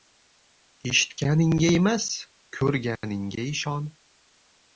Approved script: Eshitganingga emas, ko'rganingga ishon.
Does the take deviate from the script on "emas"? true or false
false